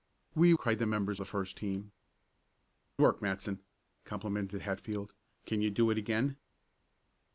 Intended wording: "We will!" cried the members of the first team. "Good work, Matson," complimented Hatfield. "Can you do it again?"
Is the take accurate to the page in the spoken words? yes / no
no